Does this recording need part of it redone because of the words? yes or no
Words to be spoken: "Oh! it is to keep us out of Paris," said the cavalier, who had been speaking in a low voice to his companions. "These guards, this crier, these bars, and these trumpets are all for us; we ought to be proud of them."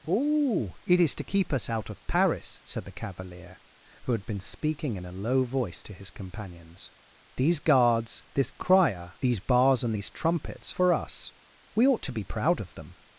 yes